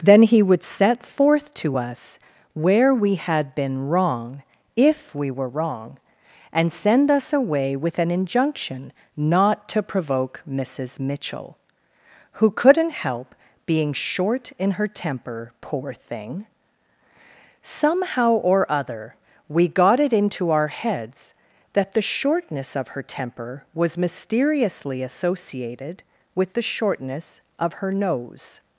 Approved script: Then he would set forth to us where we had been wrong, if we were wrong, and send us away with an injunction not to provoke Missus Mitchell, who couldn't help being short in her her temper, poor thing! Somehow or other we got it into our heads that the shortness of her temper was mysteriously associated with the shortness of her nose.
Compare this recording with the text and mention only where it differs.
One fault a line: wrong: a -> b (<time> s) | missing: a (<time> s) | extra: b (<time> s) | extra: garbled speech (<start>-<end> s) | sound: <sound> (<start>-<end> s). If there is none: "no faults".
missing: her (14.9 s)